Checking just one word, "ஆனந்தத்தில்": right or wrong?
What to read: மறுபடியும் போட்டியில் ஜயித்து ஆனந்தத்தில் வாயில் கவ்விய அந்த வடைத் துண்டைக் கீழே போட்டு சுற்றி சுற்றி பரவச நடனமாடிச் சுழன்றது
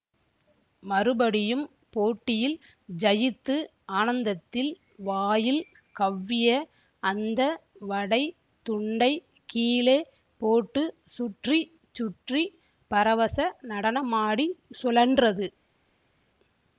right